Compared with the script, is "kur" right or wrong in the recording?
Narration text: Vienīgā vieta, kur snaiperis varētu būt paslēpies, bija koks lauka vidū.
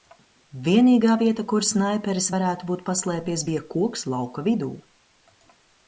right